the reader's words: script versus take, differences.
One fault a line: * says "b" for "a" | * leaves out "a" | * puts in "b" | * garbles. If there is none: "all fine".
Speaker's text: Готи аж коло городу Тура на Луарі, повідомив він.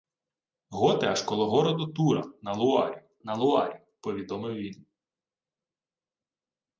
* puts in "на Луарі"